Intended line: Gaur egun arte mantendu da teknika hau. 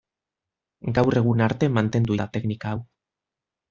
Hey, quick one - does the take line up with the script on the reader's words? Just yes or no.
yes